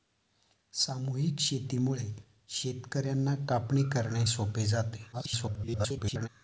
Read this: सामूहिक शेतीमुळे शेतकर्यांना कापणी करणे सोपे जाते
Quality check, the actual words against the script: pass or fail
fail